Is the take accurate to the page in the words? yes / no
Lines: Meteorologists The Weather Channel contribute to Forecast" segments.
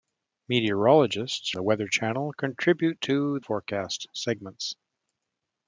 yes